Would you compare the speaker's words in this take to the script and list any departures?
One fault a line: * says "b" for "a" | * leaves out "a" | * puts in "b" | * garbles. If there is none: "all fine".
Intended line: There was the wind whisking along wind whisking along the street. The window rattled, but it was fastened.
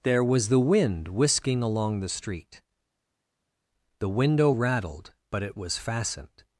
* leaves out "wind whisking along"